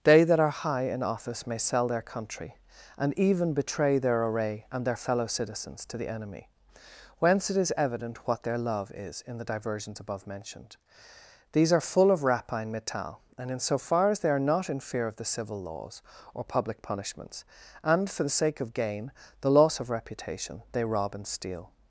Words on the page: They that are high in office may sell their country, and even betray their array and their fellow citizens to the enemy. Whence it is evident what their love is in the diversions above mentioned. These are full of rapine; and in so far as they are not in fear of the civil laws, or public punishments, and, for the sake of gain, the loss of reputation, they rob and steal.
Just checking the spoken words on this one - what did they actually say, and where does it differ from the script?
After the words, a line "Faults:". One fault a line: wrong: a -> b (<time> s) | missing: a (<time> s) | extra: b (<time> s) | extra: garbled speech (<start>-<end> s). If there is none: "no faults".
They that are high in office may sell their country, and even betray their array and their fellow citizens to the enemy. Whence it is evident what their love is in the diversions above mentioned. These are full of rapine; metal and in so far as they are not in fear of the civil laws, or public punishments, and, for the sake of gain, the loss of reputation, they rob and steal.
Faults:
extra: metal (12.7 s)